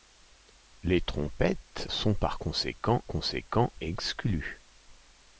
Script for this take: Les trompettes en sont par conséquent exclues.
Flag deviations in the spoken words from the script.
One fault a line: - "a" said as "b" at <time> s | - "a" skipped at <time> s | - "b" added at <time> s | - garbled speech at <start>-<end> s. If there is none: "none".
- "en" skipped at 1.9 s
- "conséquent" added at 3.0 s